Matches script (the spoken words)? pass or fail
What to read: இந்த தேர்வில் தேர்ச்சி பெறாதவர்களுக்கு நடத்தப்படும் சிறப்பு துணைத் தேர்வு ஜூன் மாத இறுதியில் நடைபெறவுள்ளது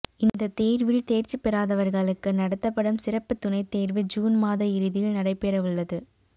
pass